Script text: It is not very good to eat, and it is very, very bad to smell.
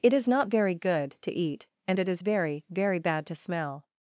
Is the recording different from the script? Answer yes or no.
no